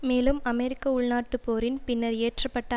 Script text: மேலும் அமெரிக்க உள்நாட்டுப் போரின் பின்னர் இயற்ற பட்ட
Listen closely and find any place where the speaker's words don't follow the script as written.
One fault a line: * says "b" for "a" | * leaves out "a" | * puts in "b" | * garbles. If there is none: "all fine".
all fine